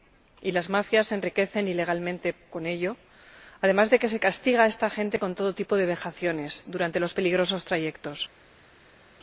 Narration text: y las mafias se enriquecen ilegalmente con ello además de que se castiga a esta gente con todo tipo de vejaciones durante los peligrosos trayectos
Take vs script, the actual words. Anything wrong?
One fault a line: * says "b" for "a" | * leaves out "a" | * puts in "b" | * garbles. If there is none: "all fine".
all fine